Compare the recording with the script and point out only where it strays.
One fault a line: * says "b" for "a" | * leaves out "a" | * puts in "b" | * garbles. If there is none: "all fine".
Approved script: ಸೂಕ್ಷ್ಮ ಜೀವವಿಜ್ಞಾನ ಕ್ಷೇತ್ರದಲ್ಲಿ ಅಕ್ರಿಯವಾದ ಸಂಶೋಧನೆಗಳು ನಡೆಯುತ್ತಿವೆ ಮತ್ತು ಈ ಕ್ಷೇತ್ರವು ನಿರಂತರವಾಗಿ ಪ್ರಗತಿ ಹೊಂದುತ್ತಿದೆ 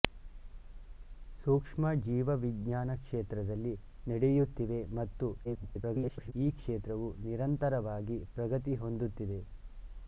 * leaves out "ಅಕ್ರಿಯವಾದ ಸಂಶೋಧನೆಗಳು"
* garbles